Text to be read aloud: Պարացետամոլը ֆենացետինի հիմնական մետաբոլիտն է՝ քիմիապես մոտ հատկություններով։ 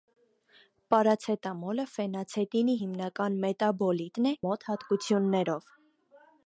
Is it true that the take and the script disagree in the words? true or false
true